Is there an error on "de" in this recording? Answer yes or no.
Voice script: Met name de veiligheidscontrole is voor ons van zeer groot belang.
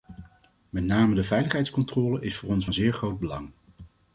no